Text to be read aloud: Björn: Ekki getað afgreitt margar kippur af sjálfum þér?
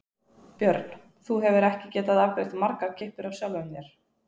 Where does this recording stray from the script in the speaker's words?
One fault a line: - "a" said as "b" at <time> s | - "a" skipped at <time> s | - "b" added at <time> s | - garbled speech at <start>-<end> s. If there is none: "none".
- "Þú hefur" added at 1.3 s